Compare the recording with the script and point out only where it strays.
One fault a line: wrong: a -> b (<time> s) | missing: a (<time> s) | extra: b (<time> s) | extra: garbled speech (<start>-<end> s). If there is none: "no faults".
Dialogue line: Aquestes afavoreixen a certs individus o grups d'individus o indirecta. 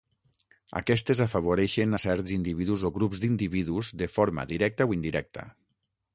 extra: de forma directa (4.0 s)